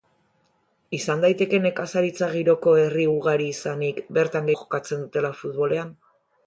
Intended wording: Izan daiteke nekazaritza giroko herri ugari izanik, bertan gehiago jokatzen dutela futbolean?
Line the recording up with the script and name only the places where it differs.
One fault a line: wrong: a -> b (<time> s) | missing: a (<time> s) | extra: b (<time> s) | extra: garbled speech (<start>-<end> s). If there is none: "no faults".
missing: gehiago (4.5 s)